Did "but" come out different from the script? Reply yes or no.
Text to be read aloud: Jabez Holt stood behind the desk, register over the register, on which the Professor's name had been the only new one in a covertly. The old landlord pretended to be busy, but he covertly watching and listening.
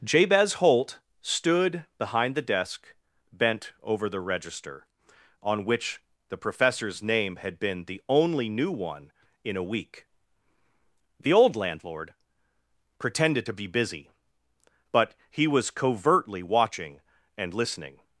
no